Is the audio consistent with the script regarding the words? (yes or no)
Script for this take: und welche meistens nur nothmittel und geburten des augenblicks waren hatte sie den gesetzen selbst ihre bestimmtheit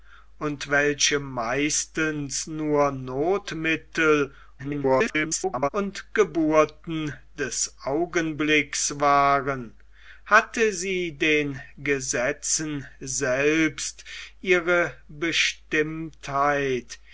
no